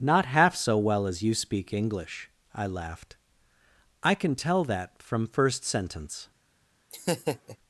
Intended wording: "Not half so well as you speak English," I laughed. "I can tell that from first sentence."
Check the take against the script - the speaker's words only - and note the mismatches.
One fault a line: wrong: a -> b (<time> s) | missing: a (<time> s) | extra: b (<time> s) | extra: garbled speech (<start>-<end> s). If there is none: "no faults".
no faults